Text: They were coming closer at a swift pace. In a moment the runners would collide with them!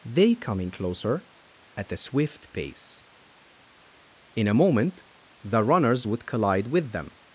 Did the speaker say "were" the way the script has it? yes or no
no